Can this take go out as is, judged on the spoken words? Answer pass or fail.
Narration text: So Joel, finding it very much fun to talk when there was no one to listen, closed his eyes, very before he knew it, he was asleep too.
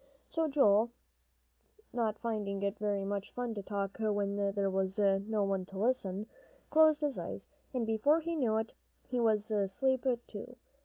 fail